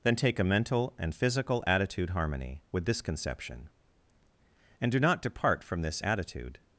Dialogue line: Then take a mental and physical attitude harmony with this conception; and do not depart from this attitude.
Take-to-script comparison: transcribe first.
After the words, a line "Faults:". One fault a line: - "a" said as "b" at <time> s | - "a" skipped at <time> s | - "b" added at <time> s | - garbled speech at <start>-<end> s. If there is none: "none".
Then take a mental and physical attitude harmony with this conception; and do not depart from this attitude.
Faults:
none